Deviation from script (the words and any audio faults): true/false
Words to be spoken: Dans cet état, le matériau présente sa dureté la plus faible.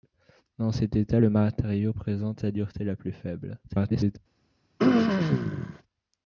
true